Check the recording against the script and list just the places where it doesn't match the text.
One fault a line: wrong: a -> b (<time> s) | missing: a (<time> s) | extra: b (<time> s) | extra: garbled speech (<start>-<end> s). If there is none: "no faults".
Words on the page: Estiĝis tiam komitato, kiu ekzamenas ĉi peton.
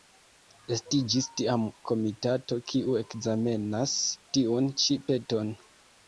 extra: tiun (4.4 s)